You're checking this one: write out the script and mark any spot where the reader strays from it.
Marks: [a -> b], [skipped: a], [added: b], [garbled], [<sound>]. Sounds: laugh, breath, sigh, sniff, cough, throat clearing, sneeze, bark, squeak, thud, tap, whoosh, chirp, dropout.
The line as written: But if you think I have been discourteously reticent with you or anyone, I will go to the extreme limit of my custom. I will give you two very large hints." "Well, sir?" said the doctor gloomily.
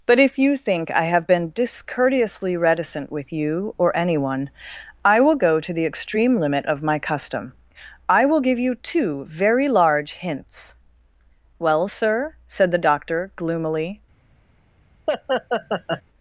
But if you think I have been discourteously reticent with you or anyone, I will go to the extreme limit of my custom. I will give you two very large hints." "Well, sir?" said the doctor gloomily. [laugh]